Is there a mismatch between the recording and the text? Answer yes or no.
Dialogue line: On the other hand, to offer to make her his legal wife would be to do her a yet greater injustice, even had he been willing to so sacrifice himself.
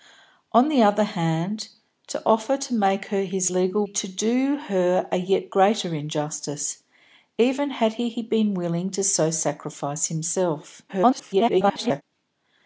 yes